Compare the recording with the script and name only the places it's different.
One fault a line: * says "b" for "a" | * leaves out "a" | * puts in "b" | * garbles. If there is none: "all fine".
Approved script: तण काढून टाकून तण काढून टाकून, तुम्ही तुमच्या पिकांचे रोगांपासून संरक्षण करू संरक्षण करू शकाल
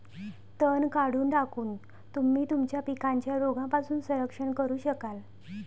* leaves out "तण काढून टाकून"
* leaves out "संरक्षण करू"